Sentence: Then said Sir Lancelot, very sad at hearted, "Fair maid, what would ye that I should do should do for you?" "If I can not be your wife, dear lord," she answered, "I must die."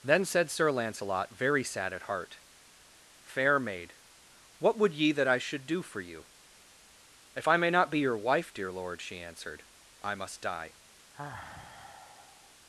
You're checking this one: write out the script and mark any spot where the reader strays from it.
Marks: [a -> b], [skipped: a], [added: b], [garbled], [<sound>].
Then said Sir Lancelot, very sad at [hearted, -> heart] "Fair maid, what would ye that I should do [skipped: should do] for you?" "If I [can -> may] not be your wife, dear lord," she answered, "I must die." [sigh]